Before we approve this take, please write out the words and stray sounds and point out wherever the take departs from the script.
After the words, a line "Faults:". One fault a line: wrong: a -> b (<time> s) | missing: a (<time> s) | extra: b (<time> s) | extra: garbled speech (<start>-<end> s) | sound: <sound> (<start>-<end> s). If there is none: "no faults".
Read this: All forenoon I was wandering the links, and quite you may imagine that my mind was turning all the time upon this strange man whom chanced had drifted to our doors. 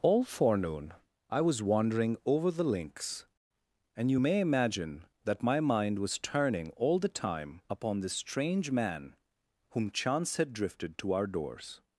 All forenoon I was wandering over the links, and you may imagine that my mind was turning all the time upon this strange man whom chance had drifted to our doors.
Faults:
extra: over (2.2 s)
missing: quite (4.1 s)
wrong: chanced -> chance (9.9 s)